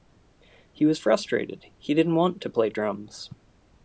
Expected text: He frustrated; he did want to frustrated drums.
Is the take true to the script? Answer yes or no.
no